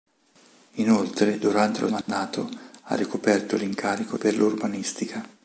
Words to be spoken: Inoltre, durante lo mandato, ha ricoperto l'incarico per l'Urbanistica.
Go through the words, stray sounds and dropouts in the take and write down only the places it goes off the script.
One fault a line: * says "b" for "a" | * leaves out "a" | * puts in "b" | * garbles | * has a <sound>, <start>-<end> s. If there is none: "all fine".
* has a dropout, 2.0-2.1 s